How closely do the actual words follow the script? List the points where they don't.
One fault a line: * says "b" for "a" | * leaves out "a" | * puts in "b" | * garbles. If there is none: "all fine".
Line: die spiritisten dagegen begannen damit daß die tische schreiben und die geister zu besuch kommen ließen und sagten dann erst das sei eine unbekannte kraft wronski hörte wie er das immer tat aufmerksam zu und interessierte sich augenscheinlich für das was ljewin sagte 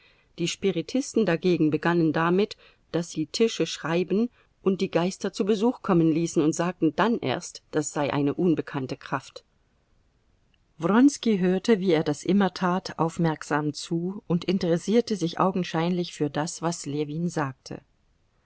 all fine